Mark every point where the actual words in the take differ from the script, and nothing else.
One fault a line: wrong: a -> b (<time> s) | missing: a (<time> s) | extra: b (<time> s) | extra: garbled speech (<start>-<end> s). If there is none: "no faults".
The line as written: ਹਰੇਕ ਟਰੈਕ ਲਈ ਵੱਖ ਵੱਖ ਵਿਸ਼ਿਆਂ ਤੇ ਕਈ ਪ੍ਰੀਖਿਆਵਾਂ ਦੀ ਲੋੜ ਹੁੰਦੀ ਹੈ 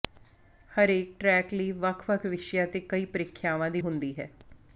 missing: ਲੋੜ (3.8 s)